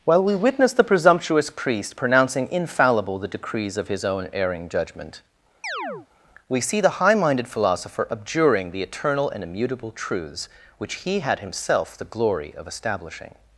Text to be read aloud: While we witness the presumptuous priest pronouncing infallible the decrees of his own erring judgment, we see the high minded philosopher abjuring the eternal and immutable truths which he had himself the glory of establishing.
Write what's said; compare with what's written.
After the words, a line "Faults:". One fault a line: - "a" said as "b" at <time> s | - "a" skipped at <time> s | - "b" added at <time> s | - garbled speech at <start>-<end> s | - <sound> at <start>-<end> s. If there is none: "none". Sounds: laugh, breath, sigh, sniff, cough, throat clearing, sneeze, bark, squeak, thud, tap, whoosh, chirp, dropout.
While we witness the presumptuous priest pronouncing infallible the decrees of his own erring judgment, we see the high minded philosopher abjuring the eternal and immutable truths which he had himself the glory of establishing.
Faults:
- chirp at 5.6-6.1 s